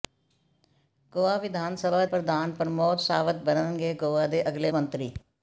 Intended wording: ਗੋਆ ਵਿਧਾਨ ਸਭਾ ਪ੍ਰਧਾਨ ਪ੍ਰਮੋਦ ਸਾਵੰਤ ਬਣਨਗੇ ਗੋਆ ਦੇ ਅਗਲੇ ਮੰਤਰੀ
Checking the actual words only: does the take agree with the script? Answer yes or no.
yes